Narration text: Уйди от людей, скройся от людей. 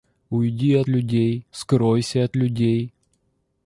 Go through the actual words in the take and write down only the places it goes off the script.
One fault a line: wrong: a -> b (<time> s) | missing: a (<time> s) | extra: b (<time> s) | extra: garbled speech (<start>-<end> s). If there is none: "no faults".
no faults